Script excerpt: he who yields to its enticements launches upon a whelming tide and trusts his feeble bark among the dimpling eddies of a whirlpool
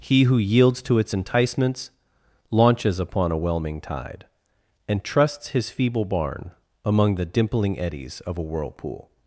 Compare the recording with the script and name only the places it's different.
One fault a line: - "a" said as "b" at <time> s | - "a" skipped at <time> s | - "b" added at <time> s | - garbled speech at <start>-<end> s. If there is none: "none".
- "bark" said as "barn" at 6.0 s